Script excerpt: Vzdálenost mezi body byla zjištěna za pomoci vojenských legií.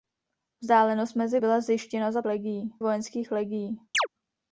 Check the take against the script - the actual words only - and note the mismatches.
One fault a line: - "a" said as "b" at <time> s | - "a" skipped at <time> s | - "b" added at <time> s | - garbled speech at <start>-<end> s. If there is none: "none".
- "body" skipped at 1.4 s
- "pomoci" said as "legií" at 2.3 s